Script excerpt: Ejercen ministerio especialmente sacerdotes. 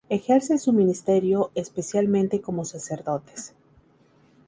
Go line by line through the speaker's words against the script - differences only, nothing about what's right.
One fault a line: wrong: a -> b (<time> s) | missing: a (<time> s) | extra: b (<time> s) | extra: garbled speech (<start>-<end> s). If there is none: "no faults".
extra: su (0.6 s)
extra: como (2.4 s)